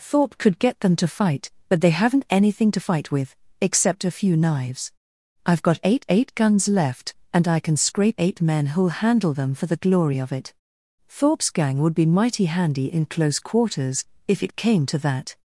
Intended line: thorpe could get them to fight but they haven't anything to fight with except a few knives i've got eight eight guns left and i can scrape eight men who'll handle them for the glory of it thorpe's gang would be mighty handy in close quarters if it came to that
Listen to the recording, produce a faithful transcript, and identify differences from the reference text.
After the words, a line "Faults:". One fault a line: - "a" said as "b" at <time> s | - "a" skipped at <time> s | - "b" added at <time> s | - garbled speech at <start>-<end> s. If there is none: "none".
thorpe could get them to fight but they haven't anything to fight with except a few knives i've got eight eight guns left and i can scrape eight men who'll handle them for the glory of it thorpe's gang would be mighty handy in close quarters if it came to that
Faults:
none